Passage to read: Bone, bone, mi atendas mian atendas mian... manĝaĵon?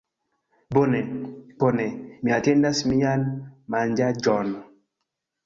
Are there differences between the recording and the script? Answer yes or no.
yes